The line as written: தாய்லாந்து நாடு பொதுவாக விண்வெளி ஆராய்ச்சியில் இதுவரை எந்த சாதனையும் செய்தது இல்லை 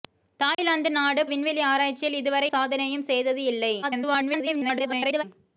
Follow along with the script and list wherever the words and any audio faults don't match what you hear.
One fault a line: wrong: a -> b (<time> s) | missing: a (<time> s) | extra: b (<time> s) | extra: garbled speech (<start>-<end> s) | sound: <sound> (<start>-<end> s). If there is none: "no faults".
sound: dropout (0.5-0.6 s)
missing: பொதுவாக (1.2 s)
missing: எந்த (2.5 s)
extra: garbled speech (3.8-5.2 s)